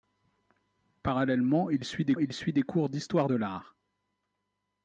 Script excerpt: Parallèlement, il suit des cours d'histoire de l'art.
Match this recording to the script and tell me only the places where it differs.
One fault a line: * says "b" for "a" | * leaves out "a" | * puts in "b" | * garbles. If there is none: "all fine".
* puts in "il suit des"